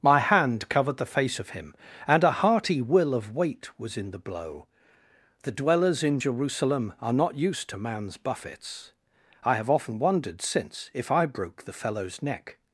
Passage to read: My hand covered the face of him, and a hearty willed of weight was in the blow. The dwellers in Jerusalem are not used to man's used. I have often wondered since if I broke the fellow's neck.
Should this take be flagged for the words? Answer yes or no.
yes